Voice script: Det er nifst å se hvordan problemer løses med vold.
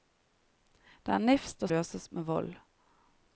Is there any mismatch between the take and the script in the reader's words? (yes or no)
yes